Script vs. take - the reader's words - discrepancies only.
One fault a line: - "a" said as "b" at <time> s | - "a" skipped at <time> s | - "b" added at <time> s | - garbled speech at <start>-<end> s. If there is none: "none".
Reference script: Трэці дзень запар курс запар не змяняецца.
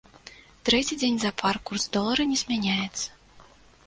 - "запар" said as "долара" at 2.0 s